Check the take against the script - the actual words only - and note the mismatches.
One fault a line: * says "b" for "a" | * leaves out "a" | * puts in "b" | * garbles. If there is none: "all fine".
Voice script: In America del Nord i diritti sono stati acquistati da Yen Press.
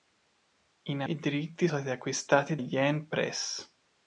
* leaves out "America del Nord"
* leaves out "sono"
* leaves out "da"